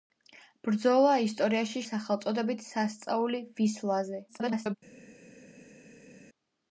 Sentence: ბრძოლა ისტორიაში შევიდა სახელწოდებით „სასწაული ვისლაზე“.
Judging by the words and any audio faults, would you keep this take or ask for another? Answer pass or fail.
fail